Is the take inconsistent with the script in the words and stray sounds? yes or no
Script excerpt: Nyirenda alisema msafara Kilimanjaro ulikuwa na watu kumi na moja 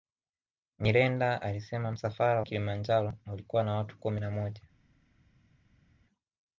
no